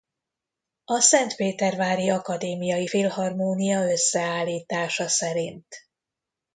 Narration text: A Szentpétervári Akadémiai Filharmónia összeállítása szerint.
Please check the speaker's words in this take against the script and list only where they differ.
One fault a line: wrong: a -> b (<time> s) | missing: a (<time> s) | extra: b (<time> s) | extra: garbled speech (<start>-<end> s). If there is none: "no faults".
no faults